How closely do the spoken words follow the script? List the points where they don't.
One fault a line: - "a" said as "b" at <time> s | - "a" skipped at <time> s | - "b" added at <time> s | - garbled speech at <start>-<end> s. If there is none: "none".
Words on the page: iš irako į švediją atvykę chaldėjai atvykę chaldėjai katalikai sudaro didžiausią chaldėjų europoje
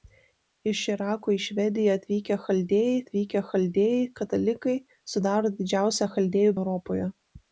none